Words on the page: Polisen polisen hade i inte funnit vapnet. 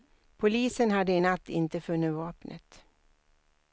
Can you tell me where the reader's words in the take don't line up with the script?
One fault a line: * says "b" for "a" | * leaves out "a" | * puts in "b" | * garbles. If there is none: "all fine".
* leaves out "polisen"
* puts in "natt"